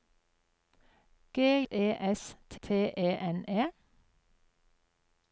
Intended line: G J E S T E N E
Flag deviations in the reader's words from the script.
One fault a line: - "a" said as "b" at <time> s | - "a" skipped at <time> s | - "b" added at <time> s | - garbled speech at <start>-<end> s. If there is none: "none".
- "J" skipped at 1.7 s
- "T" added at 2.6 s